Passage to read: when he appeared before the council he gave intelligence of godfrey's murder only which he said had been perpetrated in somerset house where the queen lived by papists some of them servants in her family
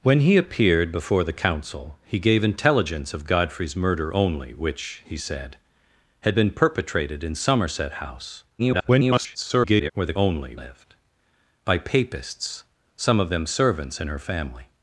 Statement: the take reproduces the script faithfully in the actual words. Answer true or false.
false